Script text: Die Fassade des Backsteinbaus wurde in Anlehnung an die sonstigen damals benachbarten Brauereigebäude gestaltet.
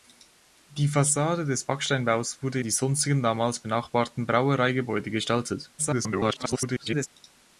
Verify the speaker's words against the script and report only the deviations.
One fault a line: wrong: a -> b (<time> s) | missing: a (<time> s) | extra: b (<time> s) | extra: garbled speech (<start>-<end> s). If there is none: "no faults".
missing: in Anlehnung an (2.6 s)
extra: garbled speech (5.8-7.1 s)